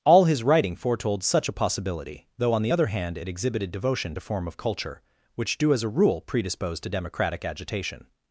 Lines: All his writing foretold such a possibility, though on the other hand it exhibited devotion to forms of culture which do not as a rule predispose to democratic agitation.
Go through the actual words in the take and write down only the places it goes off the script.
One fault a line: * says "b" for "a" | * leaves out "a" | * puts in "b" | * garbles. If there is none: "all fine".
* says "form" for "forms"
* leaves out "not"